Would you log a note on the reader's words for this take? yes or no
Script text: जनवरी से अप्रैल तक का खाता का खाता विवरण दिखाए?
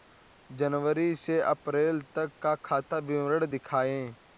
yes